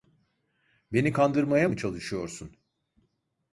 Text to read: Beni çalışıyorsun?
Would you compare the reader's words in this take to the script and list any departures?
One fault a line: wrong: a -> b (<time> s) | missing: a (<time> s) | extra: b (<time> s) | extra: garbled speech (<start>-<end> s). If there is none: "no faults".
extra: kandırmaya mı (1.1 s)